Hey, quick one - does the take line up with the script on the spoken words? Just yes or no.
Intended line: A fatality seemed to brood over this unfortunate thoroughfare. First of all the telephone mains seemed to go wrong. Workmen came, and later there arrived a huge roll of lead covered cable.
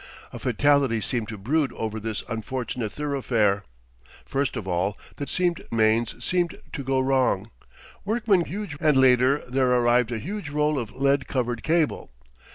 no